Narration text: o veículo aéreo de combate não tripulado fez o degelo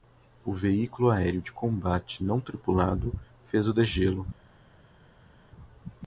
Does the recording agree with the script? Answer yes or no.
yes